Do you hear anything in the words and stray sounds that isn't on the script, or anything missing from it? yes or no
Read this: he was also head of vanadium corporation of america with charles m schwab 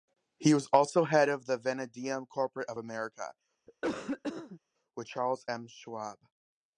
yes